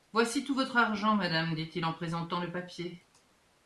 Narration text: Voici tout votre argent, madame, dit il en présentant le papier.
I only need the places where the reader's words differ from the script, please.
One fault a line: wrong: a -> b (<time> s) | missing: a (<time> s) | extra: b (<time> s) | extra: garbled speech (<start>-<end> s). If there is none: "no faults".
no faults